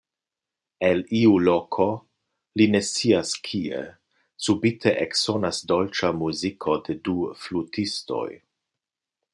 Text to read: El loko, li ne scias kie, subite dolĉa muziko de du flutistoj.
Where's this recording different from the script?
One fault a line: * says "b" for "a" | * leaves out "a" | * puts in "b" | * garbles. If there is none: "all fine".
* puts in "iu"
* puts in "eksonas"